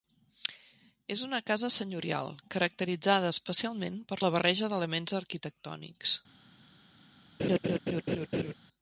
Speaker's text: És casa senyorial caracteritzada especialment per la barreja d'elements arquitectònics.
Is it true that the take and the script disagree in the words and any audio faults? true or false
true